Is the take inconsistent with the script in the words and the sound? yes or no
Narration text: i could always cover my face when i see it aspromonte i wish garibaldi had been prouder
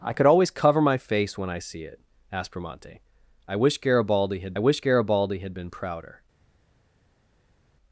yes